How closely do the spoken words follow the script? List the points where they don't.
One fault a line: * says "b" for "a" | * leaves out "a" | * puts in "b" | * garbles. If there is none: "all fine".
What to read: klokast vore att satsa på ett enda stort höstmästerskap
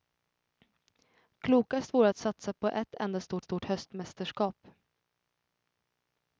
* puts in "stort"